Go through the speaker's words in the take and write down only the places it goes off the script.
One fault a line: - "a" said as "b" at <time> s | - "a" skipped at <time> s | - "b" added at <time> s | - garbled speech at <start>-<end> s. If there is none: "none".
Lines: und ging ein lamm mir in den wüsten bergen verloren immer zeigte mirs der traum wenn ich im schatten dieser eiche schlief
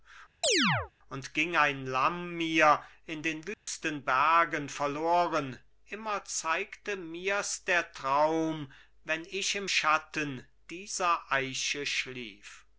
none